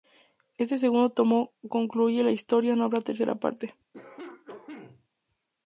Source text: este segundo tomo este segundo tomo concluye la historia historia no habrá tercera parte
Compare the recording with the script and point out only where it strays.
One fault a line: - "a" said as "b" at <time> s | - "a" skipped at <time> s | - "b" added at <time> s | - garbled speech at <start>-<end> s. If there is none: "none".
- "este segundo tomo" skipped at 1.5 s
- "historia" skipped at 2.8 s